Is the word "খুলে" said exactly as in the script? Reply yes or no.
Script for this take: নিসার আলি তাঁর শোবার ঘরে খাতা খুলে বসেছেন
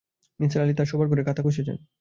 no